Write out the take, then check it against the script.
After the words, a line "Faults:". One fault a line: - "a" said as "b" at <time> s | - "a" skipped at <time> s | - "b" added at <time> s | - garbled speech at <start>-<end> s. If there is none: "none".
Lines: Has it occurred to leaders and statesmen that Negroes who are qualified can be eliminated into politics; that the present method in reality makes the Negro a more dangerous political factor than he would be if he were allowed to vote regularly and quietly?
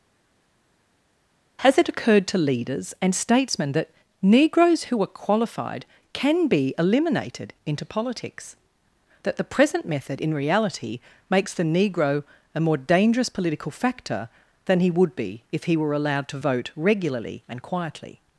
Has it occurred to leaders and statesmen that Negroes who are qualified can be eliminated into politics; that the present method in reality makes the Negro a more dangerous political factor than he would be if he were allowed to vote regularly and quietly?
Faults:
none